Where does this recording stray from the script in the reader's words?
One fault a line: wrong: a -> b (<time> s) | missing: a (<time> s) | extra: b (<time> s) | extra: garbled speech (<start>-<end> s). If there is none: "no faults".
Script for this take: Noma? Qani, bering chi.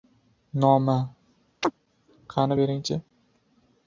no faults